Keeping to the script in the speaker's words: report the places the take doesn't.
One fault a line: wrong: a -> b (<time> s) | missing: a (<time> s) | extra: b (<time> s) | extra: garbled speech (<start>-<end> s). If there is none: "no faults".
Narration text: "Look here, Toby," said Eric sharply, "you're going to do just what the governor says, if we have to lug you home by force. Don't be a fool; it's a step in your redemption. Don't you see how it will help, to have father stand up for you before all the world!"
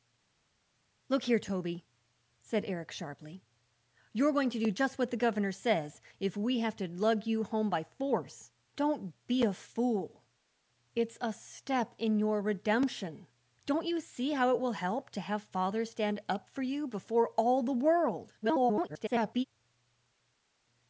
extra: garbled speech (18.4-19.4 s)